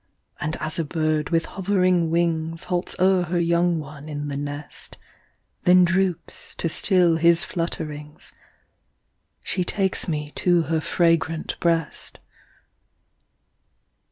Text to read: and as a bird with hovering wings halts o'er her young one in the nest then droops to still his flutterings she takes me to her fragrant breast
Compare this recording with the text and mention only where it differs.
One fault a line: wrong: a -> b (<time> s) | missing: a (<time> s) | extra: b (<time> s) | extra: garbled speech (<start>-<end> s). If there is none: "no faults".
no faults